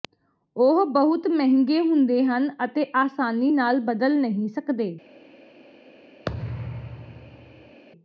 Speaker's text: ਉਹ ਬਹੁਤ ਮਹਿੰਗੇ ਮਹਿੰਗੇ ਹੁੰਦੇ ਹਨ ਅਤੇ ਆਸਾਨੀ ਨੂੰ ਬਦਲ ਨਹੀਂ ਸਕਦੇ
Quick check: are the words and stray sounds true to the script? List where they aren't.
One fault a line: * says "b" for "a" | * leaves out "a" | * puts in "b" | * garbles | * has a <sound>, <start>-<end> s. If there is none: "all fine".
* leaves out "ਮਹਿੰਗੇ"
* says "ਨਾਲ" for "ਨੂੰ"
* has a thud, 6.3-7.8 s